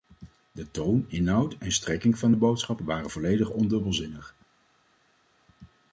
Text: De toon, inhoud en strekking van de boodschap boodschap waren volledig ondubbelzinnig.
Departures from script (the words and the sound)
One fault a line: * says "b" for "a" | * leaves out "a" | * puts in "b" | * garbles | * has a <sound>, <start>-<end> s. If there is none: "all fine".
* leaves out "boodschap"